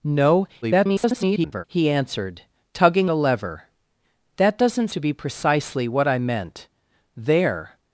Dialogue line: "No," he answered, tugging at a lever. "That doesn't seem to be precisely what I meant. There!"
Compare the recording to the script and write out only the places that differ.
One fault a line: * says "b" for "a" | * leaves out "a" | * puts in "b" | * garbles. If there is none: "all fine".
* garbles
* leaves out "at"
* leaves out "seem"